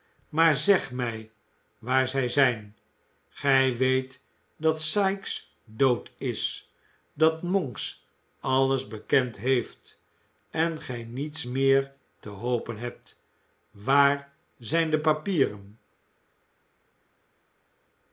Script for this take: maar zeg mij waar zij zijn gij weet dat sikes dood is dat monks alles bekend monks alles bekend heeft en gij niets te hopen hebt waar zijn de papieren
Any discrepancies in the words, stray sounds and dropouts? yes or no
yes